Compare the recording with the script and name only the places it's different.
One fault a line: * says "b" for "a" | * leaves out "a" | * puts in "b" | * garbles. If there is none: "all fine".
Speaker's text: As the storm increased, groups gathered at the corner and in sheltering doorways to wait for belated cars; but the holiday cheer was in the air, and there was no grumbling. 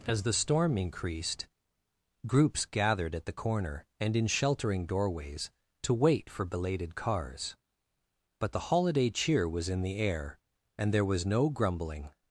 all fine